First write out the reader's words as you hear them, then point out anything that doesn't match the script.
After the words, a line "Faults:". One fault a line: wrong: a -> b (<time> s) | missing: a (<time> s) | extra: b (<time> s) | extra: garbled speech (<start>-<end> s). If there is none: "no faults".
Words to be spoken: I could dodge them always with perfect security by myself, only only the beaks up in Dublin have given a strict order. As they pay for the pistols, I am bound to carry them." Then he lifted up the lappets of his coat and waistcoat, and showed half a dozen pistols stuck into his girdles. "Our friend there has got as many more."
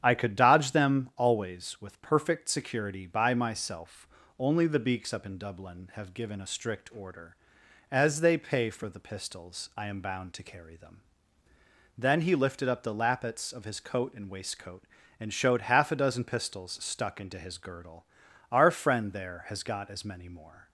I could dodge them always with perfect security by myself, only the beaks up in Dublin have given a strict order. As they pay for the pistols, I am bound to carry them." Then he lifted up the lappets of his coat and waistcoat, and showed half a dozen pistols stuck into his girdle. "Our friend there has got as many more."
Faults:
missing: only (4.7 s)
wrong: girdles -> girdle (17.6 s)